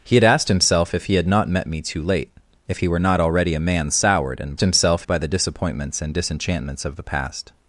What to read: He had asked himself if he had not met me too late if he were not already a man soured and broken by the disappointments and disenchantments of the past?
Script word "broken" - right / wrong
wrong